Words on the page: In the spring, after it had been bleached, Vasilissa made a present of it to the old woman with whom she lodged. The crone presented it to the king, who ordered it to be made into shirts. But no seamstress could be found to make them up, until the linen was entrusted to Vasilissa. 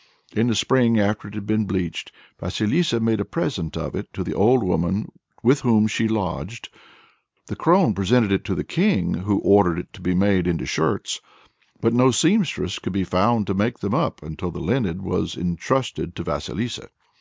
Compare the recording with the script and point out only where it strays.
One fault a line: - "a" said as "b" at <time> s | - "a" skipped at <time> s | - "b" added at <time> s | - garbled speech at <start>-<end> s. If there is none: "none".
none